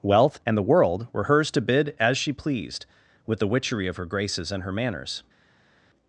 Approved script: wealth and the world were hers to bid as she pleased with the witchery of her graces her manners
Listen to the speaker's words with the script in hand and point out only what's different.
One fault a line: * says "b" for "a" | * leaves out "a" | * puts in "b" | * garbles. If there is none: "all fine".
* puts in "and"